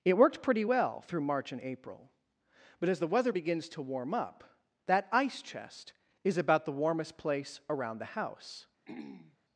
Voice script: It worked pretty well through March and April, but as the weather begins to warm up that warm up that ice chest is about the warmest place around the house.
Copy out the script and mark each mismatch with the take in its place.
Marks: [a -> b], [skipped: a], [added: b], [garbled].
It worked pretty well through March and April, but as the weather begins to warm up that [skipped: warm up that] ice chest is about the warmest place around the house.